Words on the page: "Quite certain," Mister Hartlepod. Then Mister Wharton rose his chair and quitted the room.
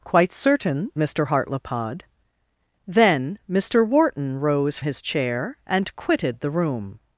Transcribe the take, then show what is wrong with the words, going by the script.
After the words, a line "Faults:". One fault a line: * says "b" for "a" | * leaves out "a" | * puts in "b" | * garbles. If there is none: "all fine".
"Quite certain," Mister Hartlepod. Then Mister Wharton rose his chair and quitted the room.
Faults:
all fine